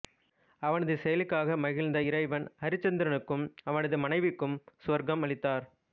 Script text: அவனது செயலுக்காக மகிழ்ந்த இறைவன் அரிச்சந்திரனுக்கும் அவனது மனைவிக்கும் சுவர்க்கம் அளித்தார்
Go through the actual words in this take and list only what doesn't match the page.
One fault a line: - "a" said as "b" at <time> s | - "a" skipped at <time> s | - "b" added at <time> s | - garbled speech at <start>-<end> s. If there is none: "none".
none